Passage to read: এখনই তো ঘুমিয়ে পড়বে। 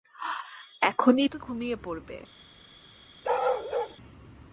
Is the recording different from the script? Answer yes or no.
no